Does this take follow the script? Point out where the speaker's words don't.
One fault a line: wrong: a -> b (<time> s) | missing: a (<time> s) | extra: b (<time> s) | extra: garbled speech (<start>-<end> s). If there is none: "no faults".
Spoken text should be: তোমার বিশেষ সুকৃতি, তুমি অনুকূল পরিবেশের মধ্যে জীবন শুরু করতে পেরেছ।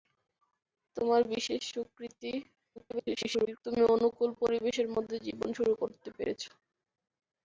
extra: garbled speech (2.8-3.6 s)